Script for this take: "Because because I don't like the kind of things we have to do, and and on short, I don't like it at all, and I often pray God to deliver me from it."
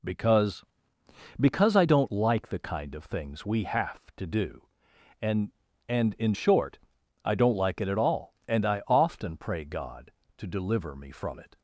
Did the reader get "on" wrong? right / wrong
wrong